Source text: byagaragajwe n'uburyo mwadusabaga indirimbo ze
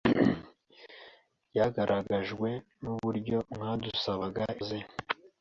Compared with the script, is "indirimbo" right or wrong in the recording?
wrong